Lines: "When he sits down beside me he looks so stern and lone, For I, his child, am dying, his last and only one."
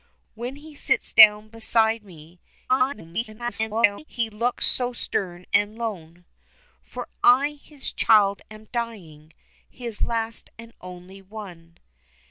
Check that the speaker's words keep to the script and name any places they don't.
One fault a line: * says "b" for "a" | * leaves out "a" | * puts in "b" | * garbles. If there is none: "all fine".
* garbles